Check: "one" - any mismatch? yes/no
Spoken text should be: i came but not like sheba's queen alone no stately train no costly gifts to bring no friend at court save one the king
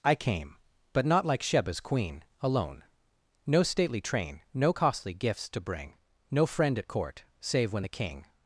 yes